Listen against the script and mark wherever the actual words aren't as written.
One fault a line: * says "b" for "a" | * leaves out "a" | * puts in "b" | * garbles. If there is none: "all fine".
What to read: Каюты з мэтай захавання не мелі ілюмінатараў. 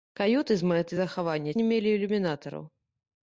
all fine